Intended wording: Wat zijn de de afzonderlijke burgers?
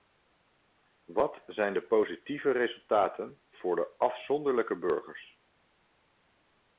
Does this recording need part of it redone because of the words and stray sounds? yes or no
yes